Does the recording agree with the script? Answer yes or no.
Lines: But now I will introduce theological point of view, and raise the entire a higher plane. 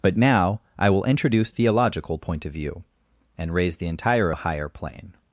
yes